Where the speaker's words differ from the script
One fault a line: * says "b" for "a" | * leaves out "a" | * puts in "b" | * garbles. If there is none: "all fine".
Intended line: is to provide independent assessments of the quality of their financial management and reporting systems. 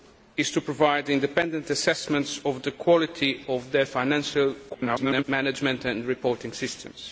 * garbles